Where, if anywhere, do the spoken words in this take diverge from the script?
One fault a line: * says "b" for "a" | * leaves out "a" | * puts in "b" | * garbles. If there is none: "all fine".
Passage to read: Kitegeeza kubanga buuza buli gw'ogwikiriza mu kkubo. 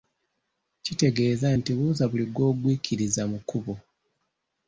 * says "nti" for "kubanga"